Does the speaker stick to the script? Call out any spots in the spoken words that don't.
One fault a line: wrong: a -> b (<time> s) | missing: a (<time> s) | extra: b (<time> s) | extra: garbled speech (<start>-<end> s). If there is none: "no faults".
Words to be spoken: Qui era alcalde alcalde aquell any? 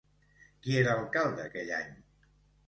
missing: alcalde (1.4 s)